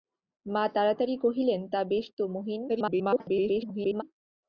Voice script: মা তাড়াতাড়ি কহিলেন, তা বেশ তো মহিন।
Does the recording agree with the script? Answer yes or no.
no